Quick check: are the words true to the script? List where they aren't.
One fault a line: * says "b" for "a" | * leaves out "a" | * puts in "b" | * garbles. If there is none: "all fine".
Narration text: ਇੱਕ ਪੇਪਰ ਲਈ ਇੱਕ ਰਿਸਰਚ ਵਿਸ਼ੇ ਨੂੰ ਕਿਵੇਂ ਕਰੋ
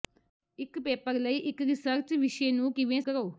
all fine